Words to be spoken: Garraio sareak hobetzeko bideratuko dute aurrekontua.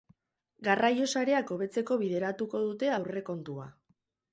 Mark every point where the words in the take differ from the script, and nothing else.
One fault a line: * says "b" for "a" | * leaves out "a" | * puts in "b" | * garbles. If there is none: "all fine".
all fine